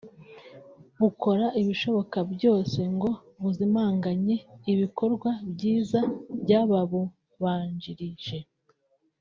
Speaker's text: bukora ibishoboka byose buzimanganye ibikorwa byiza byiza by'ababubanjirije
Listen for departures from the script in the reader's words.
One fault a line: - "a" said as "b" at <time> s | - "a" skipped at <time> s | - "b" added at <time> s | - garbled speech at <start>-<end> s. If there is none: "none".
- "ngo" added at 3.0 s
- "byiza" skipped at 6.0 s